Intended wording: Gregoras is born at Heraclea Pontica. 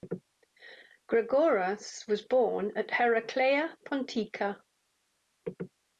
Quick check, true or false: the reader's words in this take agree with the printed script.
false